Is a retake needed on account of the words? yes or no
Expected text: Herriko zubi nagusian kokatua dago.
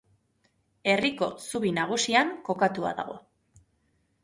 no